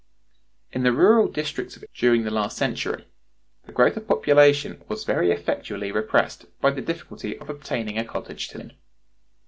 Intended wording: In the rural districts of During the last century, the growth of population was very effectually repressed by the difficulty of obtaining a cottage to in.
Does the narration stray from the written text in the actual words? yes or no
no